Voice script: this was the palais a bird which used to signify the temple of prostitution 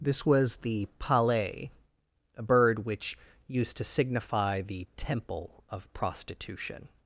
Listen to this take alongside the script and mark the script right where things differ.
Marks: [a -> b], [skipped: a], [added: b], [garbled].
this was the palais a bird which used to signify the temple of prostitution